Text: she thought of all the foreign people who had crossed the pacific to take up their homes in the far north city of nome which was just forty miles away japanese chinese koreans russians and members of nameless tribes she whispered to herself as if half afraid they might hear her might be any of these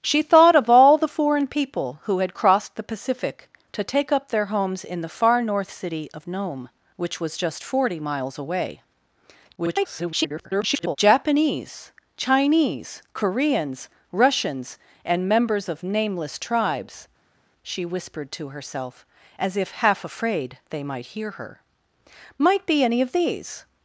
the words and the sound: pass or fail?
fail